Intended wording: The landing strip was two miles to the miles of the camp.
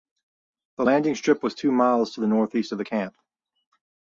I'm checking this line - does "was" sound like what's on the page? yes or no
yes